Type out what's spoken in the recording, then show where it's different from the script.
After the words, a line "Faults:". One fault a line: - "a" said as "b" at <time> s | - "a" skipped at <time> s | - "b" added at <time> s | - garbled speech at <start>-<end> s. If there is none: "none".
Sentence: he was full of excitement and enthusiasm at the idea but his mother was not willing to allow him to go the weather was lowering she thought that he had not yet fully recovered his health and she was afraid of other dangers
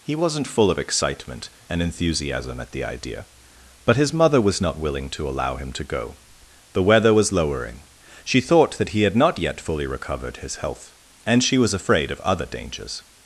he wasn't full of excitement and enthusiasm at the idea but his mother was not willing to allow him to go the weather was lowering she thought that he had not yet fully recovered his health and she was afraid of other dangers
Faults:
- "was" said as "wasn't" at 0.1 s